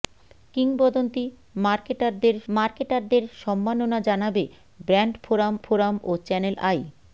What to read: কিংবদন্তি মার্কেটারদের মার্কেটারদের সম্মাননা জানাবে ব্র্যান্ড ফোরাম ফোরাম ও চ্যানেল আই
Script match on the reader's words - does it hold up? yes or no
yes